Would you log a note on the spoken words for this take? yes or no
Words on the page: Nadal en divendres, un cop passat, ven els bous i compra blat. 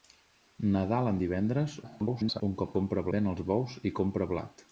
yes